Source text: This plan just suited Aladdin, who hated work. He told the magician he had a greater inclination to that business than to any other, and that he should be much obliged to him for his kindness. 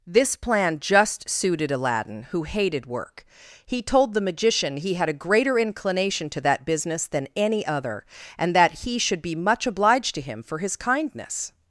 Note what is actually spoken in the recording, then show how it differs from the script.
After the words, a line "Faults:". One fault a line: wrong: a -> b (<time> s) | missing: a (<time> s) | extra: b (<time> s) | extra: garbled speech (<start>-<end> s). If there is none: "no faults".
This plan just suited Aladdin, who hated work. He told the magician he had a greater inclination to that business than any other, and that he should be much obliged to him for his kindness.
Faults:
missing: to (7.3 s)